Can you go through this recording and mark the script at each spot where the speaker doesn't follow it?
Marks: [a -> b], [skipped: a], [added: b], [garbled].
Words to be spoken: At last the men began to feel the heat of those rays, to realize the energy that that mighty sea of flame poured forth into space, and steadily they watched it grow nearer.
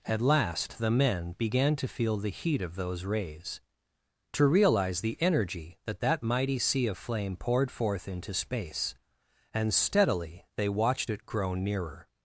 At last the men began to feel the heat of those rays, to realize the energy that that mighty sea of flame poured forth into space, and steadily they watched it grow nearer.